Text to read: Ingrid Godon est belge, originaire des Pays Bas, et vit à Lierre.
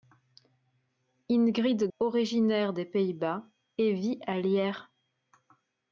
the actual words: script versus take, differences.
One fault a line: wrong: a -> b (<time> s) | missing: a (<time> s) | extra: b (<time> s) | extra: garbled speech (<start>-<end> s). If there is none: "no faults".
missing: Godon est belge (1.8 s)